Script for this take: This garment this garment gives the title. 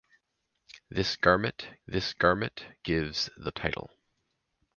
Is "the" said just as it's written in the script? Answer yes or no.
yes